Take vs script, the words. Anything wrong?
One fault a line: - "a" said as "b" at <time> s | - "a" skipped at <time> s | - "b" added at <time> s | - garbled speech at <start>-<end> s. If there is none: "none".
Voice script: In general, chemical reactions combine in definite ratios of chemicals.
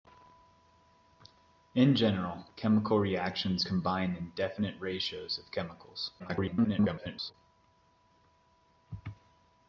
- garbled speech at 6.2-7.3 s